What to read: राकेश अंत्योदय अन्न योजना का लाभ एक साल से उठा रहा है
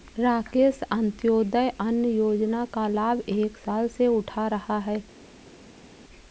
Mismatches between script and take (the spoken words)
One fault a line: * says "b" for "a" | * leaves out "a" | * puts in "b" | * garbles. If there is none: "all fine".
all fine